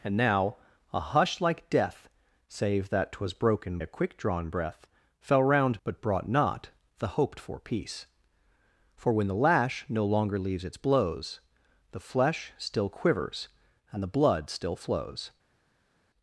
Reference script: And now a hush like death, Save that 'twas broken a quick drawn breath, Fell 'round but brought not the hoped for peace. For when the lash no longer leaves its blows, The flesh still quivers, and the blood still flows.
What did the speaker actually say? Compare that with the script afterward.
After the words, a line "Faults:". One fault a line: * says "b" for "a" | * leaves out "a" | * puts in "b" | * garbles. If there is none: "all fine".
And now a hush like death, Save that 'twas broken a quick drawn breath, Fell 'round but brought not the hoped for peace. For when the lash no longer leaves its blows, The flesh still quivers, and the blood still flows.
Faults:
all fine